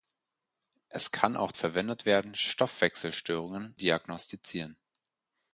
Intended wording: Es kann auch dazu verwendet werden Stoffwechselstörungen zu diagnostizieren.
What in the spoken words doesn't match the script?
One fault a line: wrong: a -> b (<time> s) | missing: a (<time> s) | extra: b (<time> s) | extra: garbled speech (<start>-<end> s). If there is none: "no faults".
missing: dazu (1.5 s)
missing: zu (3.8 s)